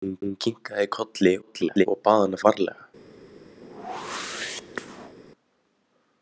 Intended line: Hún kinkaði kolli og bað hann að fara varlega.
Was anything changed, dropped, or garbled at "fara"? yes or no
yes